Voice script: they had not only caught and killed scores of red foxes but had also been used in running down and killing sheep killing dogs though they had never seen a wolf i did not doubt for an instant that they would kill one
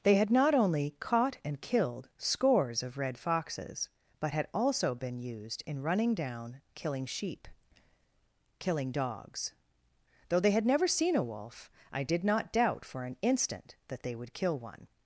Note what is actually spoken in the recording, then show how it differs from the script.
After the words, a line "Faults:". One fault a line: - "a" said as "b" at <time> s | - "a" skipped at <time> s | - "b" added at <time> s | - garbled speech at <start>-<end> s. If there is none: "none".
they had not only caught and killed scores of red foxes but had also been used in running down killing sheep killing dogs though they had never seen a wolf i did not doubt for an instant that they would kill one
Faults:
- "and" skipped at 6.6 s